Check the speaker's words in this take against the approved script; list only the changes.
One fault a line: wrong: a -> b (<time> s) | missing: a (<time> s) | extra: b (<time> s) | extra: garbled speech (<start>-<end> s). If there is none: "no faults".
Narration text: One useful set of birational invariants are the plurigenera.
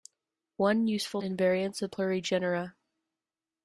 missing: set of birational (1.2 s)
missing: the (1.9 s)